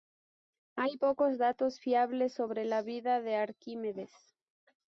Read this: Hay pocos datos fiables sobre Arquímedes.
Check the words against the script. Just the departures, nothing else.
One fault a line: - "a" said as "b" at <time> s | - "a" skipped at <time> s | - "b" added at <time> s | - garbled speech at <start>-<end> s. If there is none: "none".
- "la vida de" added at 2.7 s